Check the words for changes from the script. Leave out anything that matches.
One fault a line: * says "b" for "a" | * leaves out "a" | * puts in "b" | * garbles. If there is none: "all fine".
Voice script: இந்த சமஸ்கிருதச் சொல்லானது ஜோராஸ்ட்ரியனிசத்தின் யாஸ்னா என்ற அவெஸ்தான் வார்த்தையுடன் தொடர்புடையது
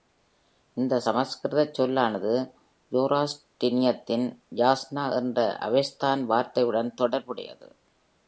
all fine